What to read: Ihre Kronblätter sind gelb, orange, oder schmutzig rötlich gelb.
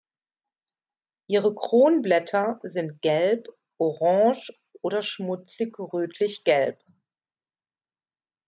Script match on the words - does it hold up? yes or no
yes